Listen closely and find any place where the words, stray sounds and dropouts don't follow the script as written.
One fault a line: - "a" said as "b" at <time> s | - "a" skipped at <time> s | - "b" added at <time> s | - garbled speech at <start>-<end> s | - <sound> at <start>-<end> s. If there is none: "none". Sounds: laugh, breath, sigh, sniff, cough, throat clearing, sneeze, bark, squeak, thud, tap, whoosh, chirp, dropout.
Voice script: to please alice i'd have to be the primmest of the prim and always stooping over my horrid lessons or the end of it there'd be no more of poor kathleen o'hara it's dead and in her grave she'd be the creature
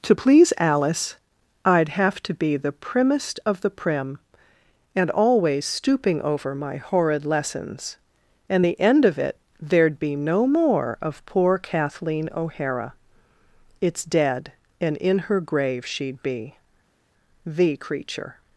- "or" said as "and" at 8.5 s